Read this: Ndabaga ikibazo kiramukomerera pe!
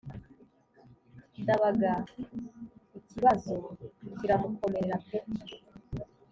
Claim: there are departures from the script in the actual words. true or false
false